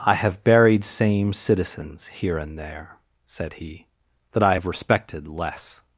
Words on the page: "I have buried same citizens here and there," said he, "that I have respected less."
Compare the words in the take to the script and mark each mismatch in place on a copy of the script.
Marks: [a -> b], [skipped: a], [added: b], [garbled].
"I have buried same citizens here and there," said he, "that I have respected less."